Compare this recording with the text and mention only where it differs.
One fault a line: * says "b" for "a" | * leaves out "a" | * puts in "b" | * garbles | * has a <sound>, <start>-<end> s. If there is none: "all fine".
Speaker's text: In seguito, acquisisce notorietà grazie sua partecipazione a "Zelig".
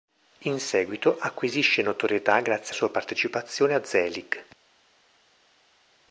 all fine